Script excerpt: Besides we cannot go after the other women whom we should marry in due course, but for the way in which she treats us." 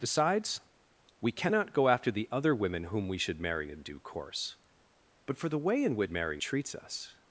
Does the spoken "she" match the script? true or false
false